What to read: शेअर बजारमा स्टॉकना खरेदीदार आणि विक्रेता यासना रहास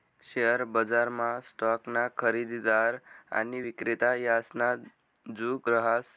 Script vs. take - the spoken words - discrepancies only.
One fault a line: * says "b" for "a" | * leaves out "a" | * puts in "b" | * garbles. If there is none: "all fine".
* puts in "जुग"